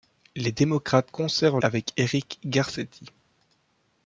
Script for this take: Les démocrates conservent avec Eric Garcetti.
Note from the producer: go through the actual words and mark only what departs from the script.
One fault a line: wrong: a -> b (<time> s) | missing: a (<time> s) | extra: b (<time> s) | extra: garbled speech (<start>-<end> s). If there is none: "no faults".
no faults